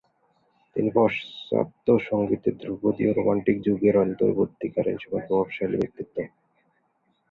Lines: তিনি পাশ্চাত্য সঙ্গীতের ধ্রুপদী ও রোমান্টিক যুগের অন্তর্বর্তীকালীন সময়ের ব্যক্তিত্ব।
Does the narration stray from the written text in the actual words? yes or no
yes